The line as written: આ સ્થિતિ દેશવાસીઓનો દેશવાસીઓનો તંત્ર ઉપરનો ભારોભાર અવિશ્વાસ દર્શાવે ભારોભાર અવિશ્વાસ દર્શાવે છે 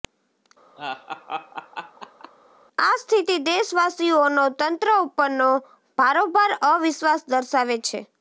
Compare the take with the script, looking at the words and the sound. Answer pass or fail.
fail